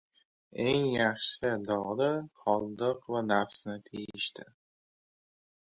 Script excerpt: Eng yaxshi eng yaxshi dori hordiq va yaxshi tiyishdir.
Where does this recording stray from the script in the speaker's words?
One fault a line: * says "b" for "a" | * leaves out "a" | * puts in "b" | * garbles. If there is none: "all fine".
* leaves out "eng yaxshi"
* says "nafsni" for "yaxshi"